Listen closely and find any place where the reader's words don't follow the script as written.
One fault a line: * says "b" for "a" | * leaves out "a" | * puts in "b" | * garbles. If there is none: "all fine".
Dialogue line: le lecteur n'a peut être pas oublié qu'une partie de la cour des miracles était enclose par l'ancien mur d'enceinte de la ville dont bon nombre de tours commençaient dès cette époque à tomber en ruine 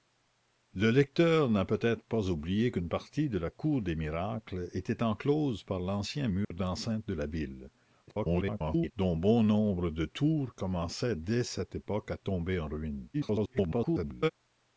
* garbles
* garbles